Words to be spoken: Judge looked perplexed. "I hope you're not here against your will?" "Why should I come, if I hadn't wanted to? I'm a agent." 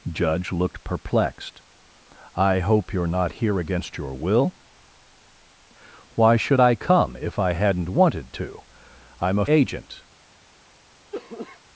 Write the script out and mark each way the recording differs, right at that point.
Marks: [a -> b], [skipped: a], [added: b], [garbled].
Judge looked perplexed. "I hope you're not here against your will?" "Why should I come, if I hadn't wanted to? I'm a agent."